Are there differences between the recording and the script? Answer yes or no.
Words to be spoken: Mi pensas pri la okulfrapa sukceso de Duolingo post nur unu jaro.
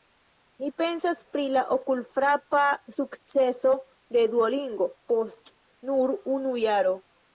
no